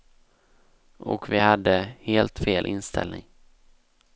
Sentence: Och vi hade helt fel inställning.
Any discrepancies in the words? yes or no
no